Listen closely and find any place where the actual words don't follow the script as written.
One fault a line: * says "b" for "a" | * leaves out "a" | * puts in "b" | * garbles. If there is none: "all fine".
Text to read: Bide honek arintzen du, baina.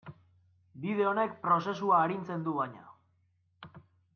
* puts in "prozesua"